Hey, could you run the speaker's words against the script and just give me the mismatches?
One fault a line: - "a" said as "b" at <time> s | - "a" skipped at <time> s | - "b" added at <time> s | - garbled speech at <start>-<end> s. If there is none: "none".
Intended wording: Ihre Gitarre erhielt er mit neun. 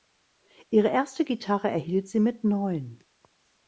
- "erste" added at 0.9 s
- "er" said as "sie" at 2.1 s